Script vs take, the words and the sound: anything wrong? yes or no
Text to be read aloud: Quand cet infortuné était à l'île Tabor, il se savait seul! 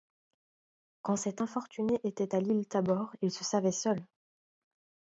no